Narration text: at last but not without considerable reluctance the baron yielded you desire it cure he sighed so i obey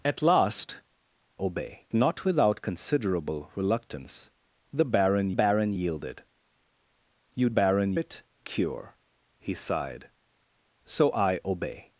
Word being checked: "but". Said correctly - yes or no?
no